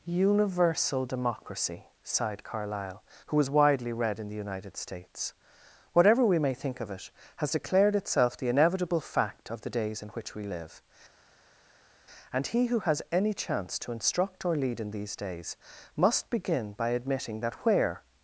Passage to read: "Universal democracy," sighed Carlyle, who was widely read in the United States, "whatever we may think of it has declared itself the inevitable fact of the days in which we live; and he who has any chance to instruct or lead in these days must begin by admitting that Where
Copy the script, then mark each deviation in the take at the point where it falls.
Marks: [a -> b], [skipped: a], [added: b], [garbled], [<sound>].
"Universal democracy," sighed Carlyle, who was widely read in the United States, "whatever we may think of it has declared itself the inevitable fact of the days in which we live; and he who has any chance to instruct or lead in these days must begin by admitting that Where